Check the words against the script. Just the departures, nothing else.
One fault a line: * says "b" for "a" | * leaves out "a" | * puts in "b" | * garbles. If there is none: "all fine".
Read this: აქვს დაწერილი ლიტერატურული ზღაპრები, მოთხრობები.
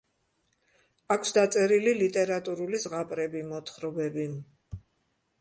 all fine